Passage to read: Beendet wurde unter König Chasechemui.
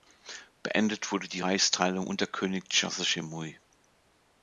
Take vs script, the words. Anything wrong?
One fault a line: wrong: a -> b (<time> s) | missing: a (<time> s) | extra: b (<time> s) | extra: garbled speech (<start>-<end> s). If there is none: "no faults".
extra: die Reichsteilung (1.3 s)